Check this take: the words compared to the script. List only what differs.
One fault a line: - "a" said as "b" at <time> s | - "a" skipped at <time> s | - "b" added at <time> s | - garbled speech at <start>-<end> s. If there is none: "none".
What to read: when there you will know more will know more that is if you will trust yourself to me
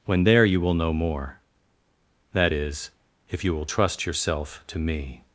- "will know more" skipped at 1.4 s